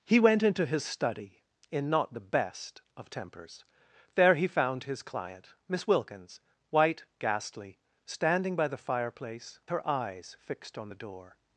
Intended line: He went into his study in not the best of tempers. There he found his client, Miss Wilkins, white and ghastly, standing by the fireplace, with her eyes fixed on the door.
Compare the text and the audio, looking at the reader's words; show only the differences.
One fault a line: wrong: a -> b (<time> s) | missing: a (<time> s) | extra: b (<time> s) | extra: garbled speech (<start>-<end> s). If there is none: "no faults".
missing: and (7.0 s)
missing: with (9.6 s)